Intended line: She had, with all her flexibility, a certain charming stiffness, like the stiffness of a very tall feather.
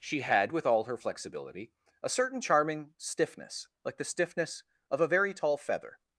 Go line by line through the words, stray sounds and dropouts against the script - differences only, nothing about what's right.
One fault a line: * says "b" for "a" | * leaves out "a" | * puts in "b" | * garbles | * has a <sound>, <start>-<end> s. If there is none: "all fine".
all fine